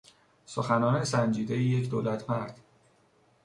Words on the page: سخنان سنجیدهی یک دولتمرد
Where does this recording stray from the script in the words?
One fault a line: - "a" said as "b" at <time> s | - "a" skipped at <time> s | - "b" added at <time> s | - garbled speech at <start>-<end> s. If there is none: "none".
none